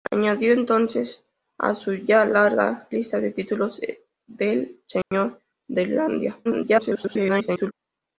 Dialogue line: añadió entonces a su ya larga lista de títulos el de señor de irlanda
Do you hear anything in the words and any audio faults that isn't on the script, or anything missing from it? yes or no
yes